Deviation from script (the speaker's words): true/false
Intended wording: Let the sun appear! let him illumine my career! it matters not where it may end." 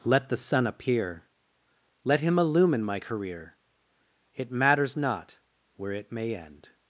false